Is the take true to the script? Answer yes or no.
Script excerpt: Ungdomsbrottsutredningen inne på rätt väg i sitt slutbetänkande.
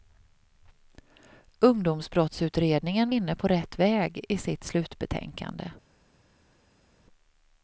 yes